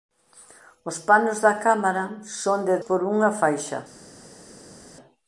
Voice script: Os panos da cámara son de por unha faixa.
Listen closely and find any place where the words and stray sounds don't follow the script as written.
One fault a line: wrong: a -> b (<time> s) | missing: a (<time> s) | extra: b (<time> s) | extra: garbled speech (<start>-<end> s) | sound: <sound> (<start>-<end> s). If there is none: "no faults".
no faults